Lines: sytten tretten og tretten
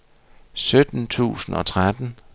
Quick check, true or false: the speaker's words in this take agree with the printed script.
false